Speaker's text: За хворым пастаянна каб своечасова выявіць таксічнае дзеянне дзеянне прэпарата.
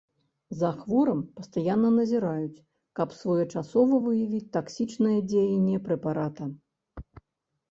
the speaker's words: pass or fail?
fail